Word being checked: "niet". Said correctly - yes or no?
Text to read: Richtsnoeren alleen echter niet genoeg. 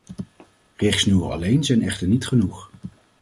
yes